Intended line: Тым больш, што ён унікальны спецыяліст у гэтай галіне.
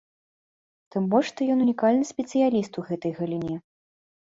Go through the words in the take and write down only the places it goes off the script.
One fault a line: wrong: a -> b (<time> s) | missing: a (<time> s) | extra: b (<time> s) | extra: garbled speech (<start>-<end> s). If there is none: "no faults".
no faults